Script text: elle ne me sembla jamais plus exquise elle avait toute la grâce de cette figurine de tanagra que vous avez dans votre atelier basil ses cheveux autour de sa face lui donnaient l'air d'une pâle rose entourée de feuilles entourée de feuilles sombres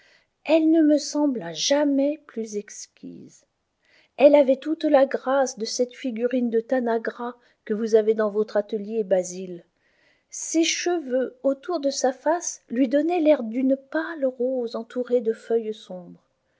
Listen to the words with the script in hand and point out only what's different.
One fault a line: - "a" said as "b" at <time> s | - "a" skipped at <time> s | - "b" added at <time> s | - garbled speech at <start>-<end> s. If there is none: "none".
- "entourée de feuilles" skipped at 15.8 s